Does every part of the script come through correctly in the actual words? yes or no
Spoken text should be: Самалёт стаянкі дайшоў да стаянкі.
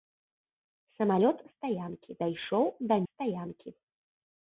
yes